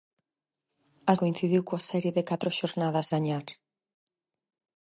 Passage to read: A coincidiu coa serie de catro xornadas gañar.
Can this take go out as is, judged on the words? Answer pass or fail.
pass